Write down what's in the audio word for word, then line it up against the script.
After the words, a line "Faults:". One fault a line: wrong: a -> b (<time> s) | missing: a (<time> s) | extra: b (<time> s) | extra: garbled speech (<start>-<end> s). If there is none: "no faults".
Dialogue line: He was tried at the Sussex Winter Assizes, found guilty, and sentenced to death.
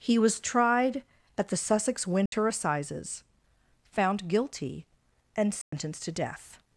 He was tried at the Sussex Winter Assizes, found guilty, and sentenced to death.
Faults:
no faults